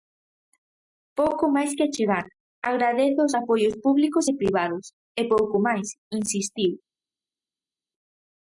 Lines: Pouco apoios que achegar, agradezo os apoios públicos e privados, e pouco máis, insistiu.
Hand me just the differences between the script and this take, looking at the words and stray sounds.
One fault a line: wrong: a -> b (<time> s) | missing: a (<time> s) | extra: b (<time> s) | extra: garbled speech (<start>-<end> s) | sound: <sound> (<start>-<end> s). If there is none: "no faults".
wrong: apoios -> máis (1.6 s)